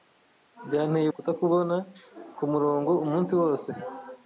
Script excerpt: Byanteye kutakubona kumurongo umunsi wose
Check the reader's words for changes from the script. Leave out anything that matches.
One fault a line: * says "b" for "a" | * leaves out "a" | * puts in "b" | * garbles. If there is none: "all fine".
all fine